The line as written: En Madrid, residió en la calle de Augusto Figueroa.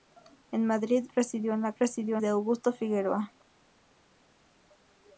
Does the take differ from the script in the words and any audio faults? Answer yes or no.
yes